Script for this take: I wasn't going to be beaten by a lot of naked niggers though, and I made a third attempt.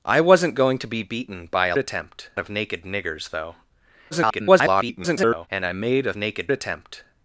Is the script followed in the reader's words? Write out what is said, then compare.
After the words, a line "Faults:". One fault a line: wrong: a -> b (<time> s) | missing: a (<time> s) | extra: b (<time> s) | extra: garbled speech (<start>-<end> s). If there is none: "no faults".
I wasn't going to be beaten by a attempt of naked niggers though, [garbled] and I made a naked attempt.
Faults:
wrong: lot -> attempt (1.8 s)
extra: garbled speech (4.1-5.5 s)
wrong: third -> naked (6.1 s)